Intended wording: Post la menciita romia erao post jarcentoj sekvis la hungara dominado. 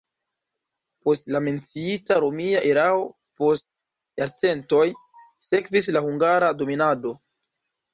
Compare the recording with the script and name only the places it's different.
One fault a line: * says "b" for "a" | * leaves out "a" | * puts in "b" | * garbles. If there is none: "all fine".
all fine